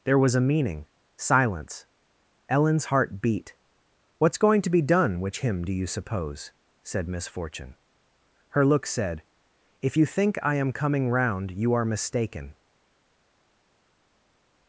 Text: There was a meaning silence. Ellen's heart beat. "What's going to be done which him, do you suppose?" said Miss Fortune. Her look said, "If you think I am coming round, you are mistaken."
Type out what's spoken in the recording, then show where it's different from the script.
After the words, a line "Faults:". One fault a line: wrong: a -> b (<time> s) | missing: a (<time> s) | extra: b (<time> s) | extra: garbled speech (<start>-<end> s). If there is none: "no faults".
There was a meaning silence. Ellen's heart beat. "What's going to be done which him, do you suppose?" said Miss Fortune. Her look said, "If you think I am coming round, you are mistaken."
Faults:
no faults